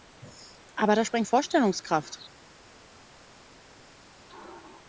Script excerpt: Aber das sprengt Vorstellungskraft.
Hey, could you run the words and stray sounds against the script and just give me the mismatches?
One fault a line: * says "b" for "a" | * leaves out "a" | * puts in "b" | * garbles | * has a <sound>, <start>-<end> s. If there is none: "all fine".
all fine